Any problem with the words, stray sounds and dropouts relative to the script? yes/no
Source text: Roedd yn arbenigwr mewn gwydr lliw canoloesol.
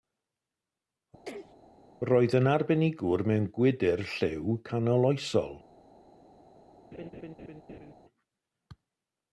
yes